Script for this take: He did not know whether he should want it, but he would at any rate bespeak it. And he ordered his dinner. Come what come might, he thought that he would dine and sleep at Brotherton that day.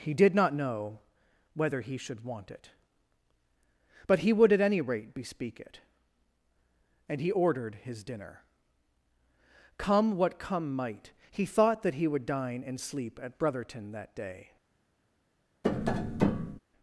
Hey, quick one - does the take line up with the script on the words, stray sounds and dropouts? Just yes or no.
no